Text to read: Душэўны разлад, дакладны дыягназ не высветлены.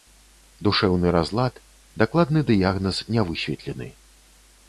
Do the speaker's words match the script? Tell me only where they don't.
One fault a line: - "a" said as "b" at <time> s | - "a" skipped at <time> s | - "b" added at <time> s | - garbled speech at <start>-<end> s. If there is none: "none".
none